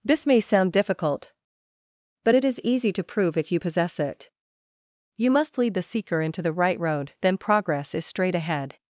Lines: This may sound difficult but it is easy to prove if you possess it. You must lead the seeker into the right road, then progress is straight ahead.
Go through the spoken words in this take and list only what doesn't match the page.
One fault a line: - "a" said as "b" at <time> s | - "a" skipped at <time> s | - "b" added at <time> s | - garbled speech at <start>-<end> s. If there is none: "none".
none